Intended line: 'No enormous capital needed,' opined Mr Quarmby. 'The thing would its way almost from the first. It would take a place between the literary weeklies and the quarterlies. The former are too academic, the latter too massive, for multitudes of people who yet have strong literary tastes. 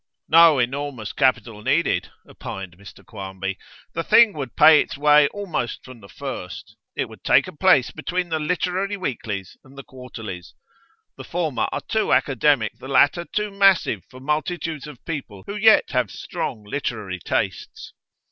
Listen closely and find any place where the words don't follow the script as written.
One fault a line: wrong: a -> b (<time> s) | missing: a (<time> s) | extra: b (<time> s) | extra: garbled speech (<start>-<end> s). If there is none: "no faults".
extra: pay (4.5 s)